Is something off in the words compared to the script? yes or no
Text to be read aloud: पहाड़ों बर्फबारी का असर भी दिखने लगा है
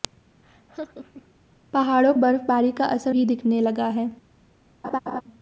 no